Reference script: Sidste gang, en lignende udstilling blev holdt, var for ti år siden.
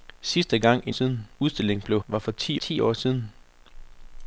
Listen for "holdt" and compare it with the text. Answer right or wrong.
wrong